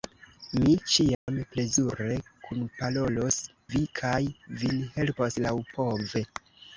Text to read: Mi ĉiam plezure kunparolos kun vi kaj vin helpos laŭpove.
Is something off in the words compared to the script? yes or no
yes